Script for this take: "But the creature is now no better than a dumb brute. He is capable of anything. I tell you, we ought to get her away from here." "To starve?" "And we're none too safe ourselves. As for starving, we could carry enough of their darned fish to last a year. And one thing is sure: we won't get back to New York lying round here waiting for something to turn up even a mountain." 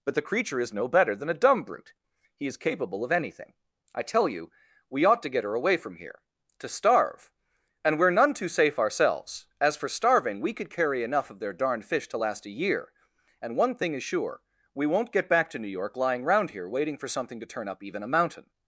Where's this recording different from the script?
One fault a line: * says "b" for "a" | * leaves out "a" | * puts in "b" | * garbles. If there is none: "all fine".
* leaves out "now"